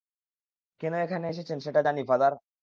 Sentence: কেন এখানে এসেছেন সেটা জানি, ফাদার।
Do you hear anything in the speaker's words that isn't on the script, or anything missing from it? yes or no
no